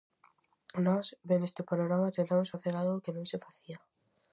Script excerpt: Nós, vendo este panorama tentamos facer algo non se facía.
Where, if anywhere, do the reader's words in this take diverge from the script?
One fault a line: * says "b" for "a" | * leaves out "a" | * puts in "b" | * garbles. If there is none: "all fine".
* puts in "que"